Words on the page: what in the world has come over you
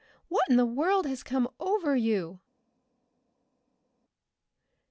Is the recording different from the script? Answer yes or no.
no